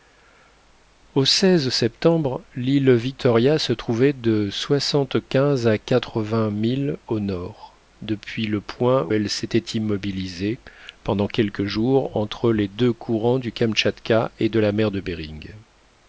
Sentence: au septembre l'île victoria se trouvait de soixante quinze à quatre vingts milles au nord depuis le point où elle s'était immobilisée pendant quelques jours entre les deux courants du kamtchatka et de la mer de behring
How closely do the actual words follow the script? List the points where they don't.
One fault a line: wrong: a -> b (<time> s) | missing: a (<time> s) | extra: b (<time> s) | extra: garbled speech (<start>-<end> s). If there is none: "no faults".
missing: où (9.1 s)